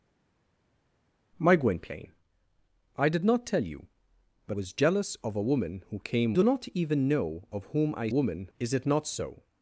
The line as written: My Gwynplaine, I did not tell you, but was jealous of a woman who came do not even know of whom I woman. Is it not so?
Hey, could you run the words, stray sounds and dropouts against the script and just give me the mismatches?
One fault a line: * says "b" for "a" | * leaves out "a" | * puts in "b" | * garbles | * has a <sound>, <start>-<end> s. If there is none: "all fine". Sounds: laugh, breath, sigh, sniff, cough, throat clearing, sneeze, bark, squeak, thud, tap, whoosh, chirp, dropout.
all fine